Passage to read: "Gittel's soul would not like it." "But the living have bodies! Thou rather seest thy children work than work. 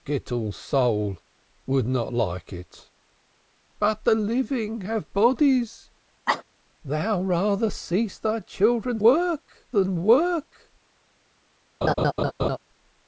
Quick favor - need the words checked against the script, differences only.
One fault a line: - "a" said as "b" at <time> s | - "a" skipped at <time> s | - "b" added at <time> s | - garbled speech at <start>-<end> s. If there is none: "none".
none